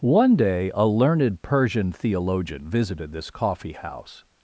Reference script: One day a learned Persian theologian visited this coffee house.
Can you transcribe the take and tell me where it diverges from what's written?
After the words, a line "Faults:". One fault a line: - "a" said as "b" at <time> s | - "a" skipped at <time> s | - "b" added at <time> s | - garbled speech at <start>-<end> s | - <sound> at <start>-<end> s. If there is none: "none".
One day a learned Persian theologian visited this coffee house.
Faults:
none